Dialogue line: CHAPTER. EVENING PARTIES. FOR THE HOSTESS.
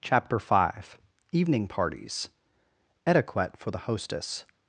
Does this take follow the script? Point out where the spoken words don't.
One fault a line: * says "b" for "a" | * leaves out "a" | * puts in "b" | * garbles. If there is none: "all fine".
* puts in "five"
* puts in "ETIQUETTE"